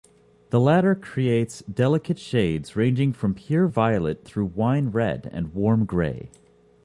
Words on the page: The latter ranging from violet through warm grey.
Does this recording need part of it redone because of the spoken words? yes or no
yes